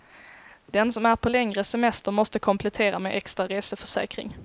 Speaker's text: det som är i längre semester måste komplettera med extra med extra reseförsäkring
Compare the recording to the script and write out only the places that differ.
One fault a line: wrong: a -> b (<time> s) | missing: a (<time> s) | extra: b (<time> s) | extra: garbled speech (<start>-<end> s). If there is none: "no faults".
wrong: det -> den (0.7 s)
wrong: i -> på (1.2 s)
missing: med extra (3.5 s)